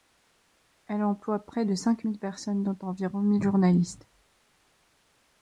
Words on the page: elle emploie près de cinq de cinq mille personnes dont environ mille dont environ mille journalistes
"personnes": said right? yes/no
yes